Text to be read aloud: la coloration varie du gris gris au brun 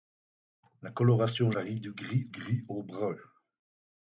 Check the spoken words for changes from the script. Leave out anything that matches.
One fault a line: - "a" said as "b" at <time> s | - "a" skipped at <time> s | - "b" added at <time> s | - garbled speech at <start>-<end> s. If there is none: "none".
none